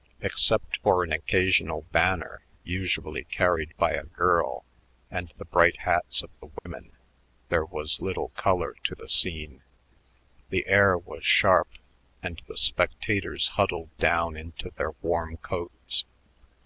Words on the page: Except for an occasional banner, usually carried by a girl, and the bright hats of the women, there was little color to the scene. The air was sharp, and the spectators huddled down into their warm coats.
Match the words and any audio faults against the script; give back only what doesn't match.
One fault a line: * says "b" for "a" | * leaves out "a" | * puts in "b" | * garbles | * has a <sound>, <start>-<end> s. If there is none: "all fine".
* has a dropout, 6.6-6.7 s